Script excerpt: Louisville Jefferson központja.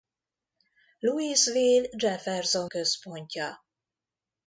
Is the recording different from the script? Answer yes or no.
no